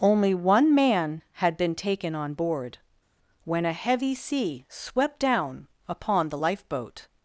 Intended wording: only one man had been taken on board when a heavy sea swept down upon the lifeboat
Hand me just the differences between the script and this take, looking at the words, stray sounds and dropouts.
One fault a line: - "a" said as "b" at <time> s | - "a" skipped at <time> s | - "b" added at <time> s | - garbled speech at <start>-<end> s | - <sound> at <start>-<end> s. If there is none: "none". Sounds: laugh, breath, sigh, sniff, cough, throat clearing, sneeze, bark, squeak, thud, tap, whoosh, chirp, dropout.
none